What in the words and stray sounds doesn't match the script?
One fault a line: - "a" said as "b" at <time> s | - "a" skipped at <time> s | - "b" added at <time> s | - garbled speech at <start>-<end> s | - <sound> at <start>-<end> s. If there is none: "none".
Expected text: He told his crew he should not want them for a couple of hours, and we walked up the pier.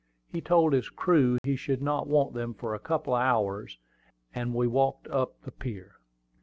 - dropout at 1.4-1.4 s